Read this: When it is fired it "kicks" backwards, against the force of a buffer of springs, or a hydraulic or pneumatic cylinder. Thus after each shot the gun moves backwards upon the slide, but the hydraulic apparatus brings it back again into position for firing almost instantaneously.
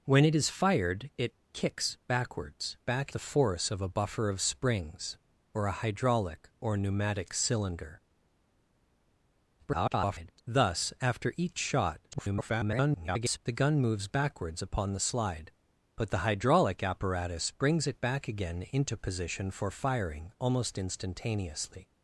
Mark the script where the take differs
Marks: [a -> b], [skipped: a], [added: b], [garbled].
When it is fired it "kicks" backwards, [against -> back] the force of a buffer of springs, or a hydraulic or pneumatic cylinder. [garbled] Thus after each shot [garbled] the gun moves backwards upon the slide, but the hydraulic apparatus brings it back again into position for firing almost instantaneously.